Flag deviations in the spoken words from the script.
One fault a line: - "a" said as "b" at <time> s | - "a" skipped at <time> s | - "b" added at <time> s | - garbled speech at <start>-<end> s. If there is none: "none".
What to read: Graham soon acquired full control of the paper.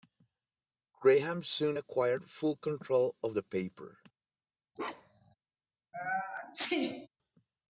none